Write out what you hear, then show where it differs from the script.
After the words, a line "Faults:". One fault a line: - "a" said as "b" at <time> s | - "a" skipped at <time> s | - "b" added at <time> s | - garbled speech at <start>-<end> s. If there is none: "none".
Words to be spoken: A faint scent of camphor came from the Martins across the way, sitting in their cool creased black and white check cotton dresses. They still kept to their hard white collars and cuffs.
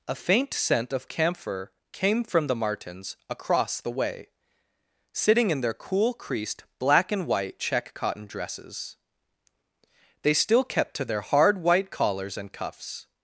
A faint scent of camphor came from the Martins across the way, sitting in their cool creased black and white check cotton dresses. They still kept to their hard white collars and cuffs.
Faults:
none